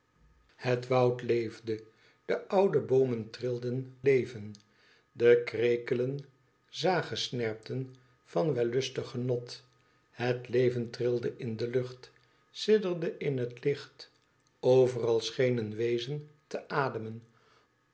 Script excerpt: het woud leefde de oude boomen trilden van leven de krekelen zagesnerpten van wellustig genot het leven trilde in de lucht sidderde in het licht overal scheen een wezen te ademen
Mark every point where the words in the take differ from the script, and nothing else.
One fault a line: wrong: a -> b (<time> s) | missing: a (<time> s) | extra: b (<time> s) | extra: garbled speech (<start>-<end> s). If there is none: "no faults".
missing: van (4.0 s)